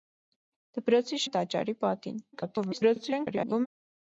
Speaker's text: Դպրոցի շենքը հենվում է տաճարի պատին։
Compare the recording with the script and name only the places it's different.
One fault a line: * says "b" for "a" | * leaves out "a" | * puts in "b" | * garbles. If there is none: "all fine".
* leaves out "շենքը հենվում"
* garbles